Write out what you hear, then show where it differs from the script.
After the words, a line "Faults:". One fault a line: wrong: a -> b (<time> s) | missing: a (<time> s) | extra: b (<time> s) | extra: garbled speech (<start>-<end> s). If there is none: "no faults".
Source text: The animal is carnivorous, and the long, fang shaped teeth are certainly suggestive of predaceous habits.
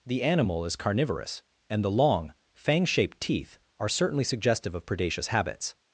The animal is carnivorous, and the long, fang shaped teeth are certainly suggestive of predaceous habits.
Faults:
no faults